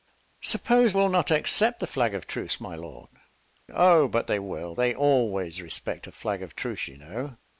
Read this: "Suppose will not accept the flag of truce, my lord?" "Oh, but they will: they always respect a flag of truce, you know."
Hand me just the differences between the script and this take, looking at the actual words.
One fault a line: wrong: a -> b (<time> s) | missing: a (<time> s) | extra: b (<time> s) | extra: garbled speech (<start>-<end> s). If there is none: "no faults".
no faults